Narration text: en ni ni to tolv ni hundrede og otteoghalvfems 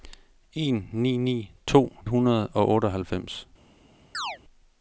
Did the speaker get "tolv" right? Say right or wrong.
wrong